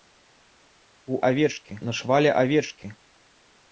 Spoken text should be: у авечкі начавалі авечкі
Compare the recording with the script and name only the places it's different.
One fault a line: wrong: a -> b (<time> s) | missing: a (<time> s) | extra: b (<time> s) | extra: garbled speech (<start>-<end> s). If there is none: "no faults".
no faults